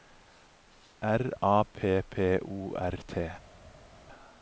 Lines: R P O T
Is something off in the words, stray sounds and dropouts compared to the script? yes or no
yes